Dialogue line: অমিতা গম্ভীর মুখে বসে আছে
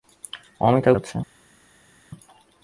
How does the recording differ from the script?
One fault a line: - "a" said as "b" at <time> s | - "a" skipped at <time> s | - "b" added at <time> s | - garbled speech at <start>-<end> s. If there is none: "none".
- "গম্ভীর মুখে বসে" skipped at 0.9 s